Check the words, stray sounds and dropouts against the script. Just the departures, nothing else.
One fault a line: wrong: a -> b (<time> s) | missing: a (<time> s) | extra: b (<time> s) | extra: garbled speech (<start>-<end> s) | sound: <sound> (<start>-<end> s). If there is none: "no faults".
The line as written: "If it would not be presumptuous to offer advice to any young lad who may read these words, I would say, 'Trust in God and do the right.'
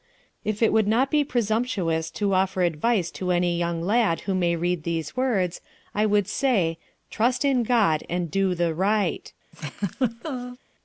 sound: laugh (9.5-10.6 s)